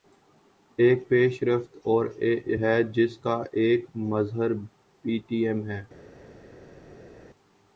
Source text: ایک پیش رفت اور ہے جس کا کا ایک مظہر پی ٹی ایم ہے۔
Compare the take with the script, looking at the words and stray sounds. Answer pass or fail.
fail